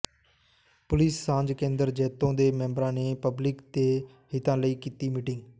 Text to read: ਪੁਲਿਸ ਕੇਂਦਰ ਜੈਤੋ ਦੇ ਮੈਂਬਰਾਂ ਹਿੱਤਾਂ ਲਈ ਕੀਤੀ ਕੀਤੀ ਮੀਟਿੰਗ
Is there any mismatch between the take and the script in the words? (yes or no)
yes